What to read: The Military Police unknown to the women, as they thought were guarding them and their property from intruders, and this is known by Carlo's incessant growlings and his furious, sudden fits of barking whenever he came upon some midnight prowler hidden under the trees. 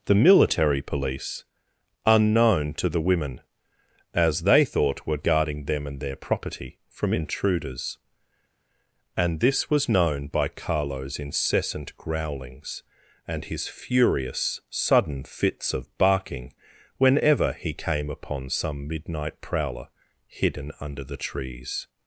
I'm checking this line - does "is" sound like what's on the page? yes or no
no